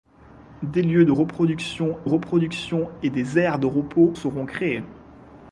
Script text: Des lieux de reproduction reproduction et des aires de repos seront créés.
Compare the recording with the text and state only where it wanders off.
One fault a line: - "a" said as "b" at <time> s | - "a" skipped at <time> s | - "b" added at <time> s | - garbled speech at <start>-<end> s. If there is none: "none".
none